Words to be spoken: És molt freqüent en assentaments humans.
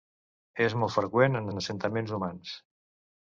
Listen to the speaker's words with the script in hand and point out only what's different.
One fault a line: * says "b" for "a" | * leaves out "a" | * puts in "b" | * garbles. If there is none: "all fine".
* puts in "en"